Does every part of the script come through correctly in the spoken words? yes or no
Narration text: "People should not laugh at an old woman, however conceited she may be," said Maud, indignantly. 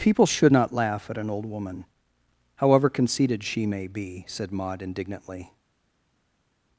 yes